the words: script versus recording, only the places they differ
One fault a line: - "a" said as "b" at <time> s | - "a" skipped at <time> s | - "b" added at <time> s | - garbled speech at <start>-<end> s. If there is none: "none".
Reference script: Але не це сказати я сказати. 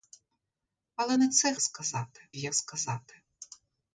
none